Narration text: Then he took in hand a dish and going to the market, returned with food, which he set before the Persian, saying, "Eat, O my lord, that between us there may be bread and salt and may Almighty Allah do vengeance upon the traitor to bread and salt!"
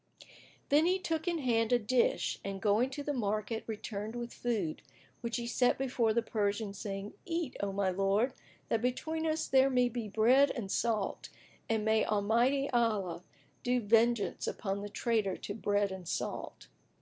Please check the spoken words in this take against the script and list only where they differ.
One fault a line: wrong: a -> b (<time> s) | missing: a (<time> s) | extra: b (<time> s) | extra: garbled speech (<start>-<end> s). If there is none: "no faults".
no faults